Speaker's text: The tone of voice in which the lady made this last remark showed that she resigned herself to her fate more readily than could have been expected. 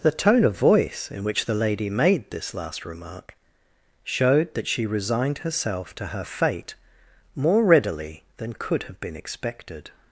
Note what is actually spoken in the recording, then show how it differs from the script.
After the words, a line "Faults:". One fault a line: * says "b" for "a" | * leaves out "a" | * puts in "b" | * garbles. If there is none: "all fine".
The tone of voice in which the lady made this last remark showed that she resigned herself to her fate more readily than could have been expected.
Faults:
all fine